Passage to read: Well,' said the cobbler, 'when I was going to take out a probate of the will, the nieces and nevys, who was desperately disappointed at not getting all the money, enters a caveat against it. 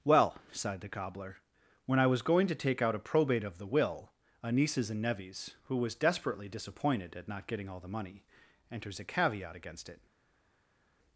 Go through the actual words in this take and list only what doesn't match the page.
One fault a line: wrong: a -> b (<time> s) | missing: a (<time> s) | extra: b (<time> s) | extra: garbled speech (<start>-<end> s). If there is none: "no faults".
wrong: said -> sighed (0.5 s)
wrong: the -> a (4.4 s)